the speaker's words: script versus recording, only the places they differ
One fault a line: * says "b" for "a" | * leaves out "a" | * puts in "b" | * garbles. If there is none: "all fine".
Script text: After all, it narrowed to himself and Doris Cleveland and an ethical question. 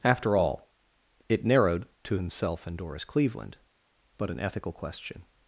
* says "but" for "and"